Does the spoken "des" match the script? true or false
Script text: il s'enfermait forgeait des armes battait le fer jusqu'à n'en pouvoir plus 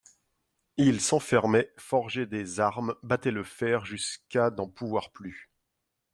true